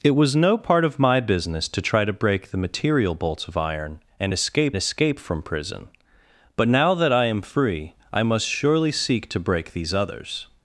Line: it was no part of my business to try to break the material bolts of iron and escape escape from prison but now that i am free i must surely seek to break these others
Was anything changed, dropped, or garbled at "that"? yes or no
no